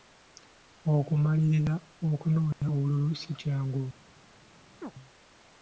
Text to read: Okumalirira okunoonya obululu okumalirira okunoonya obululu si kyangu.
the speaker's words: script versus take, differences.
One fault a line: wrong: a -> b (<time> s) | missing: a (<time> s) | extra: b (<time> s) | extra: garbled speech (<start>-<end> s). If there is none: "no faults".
missing: okumalirira okunoonya obululu (3.1 s)